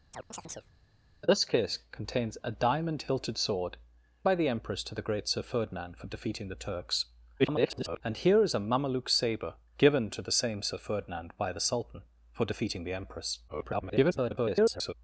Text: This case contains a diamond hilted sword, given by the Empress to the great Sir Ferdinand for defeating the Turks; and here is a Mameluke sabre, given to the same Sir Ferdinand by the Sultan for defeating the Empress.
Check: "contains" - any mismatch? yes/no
no